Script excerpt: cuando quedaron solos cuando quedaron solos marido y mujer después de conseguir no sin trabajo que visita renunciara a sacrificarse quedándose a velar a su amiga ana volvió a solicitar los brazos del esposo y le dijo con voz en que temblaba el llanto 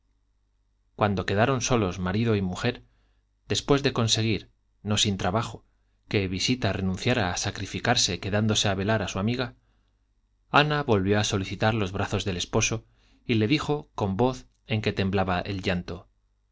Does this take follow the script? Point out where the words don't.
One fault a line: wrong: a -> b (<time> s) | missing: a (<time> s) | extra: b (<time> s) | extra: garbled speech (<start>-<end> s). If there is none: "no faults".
missing: cuando quedaron solos (2.0 s)